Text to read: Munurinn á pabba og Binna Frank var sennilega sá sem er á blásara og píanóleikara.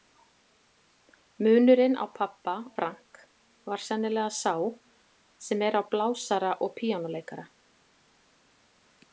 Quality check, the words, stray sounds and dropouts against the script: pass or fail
fail